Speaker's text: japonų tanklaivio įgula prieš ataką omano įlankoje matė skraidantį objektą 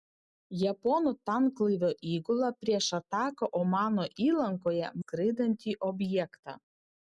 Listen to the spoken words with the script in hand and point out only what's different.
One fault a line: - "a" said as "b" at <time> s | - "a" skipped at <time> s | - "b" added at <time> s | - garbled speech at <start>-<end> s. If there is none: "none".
- "matė" skipped at 4.9 s